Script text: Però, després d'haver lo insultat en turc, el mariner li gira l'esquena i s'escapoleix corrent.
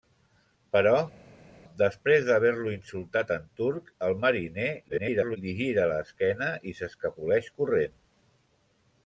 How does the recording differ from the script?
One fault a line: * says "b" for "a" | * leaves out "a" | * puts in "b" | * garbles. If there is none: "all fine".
* garbles